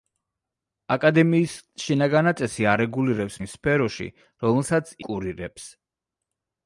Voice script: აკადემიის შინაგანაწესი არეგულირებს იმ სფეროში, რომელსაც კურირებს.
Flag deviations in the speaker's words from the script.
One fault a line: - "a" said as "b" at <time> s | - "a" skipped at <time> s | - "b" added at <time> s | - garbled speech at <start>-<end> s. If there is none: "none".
none